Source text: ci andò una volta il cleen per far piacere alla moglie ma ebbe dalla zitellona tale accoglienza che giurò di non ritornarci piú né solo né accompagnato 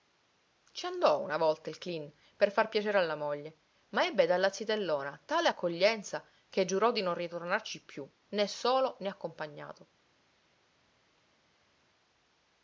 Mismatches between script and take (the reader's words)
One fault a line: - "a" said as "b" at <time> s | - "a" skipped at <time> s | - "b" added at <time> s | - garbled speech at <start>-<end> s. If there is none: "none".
none